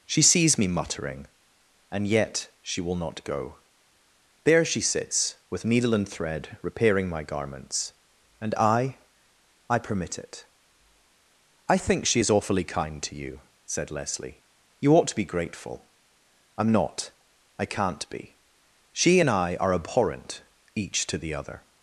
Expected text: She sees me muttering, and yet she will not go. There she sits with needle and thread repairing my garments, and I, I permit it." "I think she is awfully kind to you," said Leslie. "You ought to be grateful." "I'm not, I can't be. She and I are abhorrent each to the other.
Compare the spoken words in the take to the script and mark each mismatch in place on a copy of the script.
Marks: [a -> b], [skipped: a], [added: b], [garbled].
She sees me muttering, and yet she will not go. There she sits with needle and thread repairing my garments, and I, I permit it." "I think she is awfully kind to you," said Leslie. "You ought to be grateful." "I'm not, I can't be. She and I are abhorrent each to the other.